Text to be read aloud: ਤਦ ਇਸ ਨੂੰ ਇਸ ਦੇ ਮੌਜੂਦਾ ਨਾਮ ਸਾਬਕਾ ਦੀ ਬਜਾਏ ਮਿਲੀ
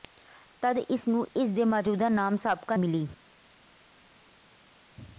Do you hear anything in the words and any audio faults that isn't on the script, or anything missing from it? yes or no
yes